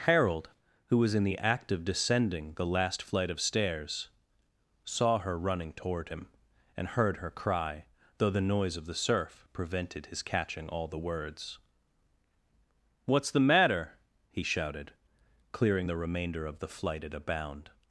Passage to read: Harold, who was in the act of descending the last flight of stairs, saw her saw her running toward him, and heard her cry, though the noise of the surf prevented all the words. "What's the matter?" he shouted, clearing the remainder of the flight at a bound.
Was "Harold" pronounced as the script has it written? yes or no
yes